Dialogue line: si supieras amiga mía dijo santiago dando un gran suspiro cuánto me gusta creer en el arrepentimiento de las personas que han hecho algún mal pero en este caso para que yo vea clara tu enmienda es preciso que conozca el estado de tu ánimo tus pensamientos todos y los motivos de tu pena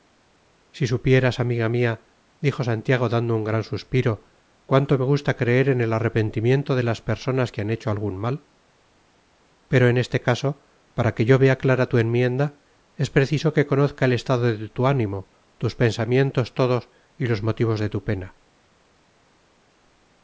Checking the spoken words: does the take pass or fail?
pass